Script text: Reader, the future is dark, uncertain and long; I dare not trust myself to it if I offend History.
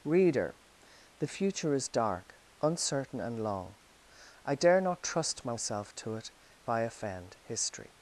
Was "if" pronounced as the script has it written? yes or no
no